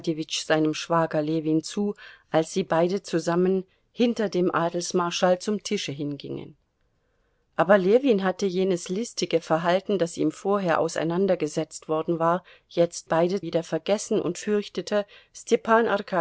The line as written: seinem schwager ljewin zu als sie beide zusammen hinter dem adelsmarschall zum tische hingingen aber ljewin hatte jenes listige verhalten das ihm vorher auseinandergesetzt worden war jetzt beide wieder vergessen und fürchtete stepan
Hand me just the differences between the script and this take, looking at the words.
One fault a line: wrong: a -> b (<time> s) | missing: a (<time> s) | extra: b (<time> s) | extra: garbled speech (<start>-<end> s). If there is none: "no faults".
no faults